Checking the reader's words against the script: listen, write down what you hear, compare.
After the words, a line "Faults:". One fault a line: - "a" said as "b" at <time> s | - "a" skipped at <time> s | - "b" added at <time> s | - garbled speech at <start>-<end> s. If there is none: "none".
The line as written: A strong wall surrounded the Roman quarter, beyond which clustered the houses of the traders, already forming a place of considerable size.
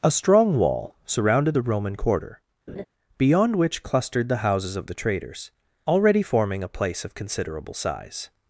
A strong wall surrounded the Roman quarter, beyond which clustered the houses of the traders, already forming a place of considerable size.
Faults:
none